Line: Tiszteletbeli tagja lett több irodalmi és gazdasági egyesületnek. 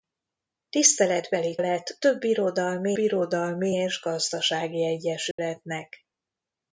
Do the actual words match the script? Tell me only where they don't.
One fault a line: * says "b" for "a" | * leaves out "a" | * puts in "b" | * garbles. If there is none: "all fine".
* leaves out "tagja"
* puts in "irodalmi"